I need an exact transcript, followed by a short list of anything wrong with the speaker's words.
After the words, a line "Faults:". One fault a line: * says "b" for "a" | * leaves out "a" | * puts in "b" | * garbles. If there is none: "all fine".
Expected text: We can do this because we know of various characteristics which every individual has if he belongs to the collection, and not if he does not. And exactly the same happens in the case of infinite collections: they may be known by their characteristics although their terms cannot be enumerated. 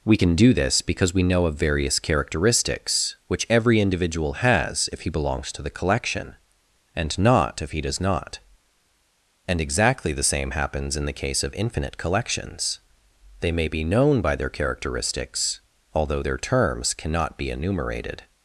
We can do this because we know of various characteristics which every individual has if he belongs to the collection, and not if he does not. And exactly the same happens in the case of infinite collections: they may be known by their characteristics although their terms cannot be enumerated.
Faults:
all fine